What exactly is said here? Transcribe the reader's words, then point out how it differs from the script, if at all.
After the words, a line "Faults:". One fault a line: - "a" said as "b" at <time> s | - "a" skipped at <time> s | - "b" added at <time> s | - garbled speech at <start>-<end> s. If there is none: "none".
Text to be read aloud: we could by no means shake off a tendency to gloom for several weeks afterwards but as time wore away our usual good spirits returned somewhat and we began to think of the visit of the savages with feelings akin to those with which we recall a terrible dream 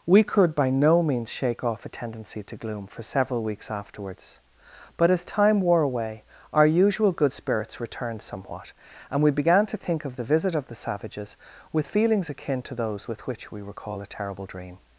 we could by no means shake off a tendency to gloom for several weeks afterwards but as time wore away our usual good spirits returned somewhat and we began to think of the visit of the savages with feelings akin to those with which we recall a terrible dream
Faults:
none